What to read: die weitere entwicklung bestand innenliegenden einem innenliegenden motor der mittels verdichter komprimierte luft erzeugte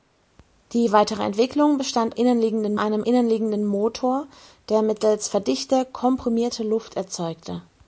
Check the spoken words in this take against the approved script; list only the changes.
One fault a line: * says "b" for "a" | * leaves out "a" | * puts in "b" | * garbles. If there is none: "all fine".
all fine